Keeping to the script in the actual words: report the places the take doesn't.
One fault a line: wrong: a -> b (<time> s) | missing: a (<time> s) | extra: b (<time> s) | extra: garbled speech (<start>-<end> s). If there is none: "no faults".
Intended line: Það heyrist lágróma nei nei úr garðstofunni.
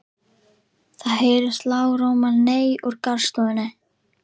missing: nei (2.7 s)